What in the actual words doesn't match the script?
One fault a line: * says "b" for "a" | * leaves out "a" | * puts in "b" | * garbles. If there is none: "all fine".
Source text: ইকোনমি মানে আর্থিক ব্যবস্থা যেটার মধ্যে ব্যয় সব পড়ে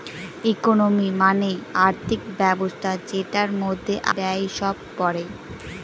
all fine